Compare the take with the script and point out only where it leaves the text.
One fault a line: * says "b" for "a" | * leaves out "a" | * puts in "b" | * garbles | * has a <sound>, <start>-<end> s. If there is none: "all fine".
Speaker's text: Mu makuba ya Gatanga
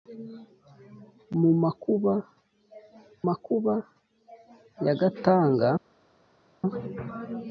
* puts in "makuba"